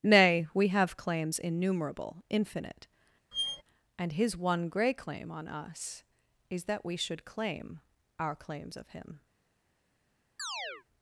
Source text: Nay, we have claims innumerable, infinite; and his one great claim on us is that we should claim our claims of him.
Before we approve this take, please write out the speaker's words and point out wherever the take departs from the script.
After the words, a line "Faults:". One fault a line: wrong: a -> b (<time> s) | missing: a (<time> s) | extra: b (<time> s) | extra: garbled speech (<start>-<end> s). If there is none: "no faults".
Nay, we have claims innumerable, infinite; and his one grey claim on us is that we should claim our claims of him.
Faults:
wrong: great -> grey (4.7 s)